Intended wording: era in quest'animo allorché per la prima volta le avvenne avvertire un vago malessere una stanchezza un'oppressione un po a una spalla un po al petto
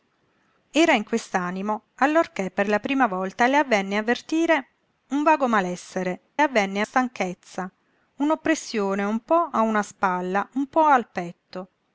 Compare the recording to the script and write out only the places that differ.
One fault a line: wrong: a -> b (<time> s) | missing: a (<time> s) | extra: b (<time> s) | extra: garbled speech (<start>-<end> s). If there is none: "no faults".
wrong: una -> avvenne (6.4 s)